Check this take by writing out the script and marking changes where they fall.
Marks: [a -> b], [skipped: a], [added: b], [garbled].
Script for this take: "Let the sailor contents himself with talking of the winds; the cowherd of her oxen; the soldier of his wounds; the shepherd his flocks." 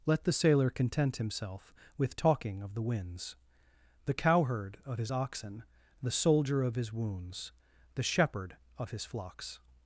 "Let the sailor [contents -> content] himself with talking of the winds; the cowherd of [her -> his] oxen; the soldier of his wounds; the shepherd [added: of] his flocks."